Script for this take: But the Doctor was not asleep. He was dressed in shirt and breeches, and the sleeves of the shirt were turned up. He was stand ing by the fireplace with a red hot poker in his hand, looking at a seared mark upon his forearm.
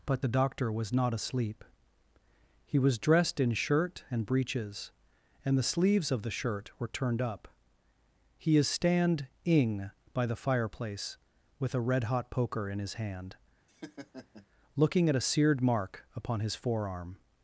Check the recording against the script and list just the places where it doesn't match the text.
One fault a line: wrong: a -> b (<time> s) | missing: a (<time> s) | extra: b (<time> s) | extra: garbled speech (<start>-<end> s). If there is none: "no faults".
wrong: was -> is (8.6 s)